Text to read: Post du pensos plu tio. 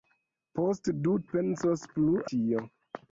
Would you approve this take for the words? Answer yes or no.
yes